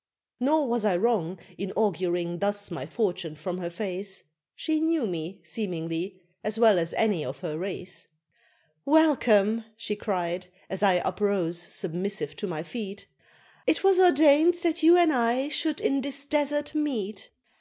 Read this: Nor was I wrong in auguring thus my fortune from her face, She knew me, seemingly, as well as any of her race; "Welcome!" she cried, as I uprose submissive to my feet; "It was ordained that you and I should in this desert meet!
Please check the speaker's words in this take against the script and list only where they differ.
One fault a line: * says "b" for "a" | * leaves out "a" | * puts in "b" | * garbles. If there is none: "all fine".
all fine